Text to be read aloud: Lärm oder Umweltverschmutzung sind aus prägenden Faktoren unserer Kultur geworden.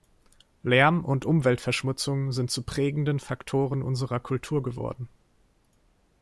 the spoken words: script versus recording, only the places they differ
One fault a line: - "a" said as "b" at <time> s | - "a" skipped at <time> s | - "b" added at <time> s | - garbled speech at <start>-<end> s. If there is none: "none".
- "oder" said as "und" at 1.1 s
- "aus" said as "zu" at 2.5 s